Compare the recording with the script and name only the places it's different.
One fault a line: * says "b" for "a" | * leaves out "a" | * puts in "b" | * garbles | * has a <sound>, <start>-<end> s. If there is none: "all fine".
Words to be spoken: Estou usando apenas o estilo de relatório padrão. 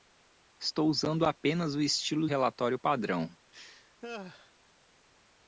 * leaves out "de"
* has a laugh, 3.5-4.5 s